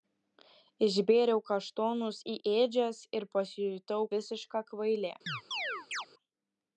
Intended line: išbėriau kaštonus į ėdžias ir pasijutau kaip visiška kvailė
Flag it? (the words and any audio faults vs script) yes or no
yes